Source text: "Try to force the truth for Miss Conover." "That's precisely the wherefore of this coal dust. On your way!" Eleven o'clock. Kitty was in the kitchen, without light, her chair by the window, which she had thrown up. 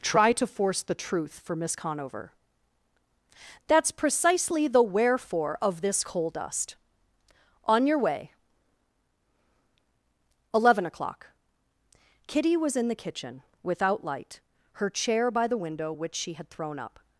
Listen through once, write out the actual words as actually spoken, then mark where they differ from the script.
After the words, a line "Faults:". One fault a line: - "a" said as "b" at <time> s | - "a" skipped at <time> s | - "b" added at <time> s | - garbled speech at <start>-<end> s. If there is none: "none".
"Try to force the truth for Miss Conover." "That's precisely the wherefore of this coal dust. On your way!" Eleven o'clock. Kitty was in the kitchen, without light, her chair by the window, which she had thrown up.
Faults:
none